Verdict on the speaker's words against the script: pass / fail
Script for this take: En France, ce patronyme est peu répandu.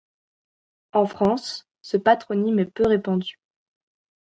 pass